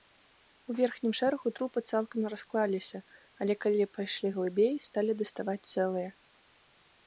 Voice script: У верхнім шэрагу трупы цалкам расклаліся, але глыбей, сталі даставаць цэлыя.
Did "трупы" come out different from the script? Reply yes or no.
no